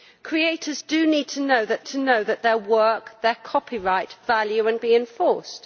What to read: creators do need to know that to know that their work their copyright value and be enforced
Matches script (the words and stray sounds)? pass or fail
pass